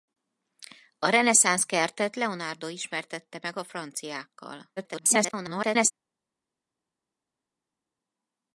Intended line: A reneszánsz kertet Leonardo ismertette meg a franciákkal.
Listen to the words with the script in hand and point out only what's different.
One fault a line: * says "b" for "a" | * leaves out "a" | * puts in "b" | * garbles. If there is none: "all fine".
* garbles